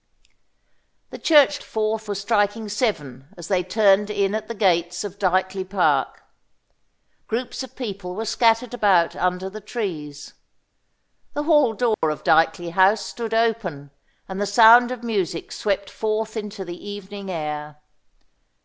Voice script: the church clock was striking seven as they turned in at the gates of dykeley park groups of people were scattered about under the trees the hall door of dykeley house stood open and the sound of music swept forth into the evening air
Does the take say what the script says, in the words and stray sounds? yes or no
no